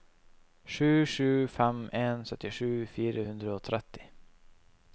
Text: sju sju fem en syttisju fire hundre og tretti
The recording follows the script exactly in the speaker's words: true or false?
true